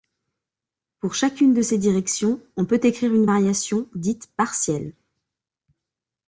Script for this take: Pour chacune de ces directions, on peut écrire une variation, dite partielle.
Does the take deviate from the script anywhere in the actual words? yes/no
no